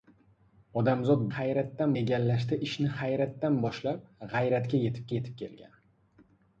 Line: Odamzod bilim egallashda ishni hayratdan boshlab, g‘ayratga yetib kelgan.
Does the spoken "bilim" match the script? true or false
false